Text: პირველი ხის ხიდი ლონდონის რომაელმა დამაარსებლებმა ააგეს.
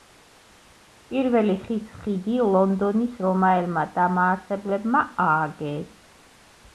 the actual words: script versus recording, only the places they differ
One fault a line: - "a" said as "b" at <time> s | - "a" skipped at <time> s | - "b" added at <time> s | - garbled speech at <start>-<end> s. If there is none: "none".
none